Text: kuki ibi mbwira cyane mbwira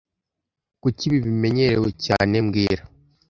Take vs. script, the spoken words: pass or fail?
fail